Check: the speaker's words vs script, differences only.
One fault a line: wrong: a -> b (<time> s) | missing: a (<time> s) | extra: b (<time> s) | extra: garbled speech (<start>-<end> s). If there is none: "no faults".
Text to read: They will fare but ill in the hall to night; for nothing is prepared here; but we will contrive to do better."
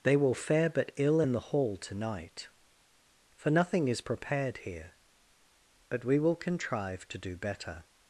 no faults